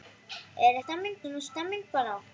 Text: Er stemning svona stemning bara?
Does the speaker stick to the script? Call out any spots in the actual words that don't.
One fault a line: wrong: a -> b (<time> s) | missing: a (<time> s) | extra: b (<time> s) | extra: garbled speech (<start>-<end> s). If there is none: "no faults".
no faults